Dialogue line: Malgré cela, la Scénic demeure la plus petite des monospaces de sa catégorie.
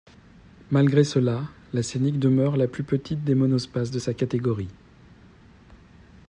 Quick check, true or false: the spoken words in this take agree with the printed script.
true